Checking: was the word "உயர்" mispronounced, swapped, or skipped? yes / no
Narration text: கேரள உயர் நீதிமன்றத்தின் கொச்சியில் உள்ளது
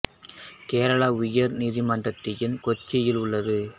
no